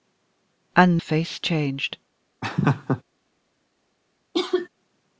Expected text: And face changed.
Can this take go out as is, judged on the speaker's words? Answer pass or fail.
pass